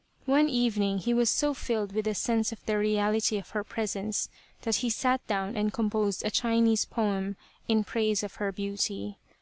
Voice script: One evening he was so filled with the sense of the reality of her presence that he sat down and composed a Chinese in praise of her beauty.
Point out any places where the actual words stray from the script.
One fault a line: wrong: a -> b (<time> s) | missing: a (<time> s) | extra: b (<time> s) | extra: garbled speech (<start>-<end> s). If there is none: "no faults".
extra: poem (6.8 s)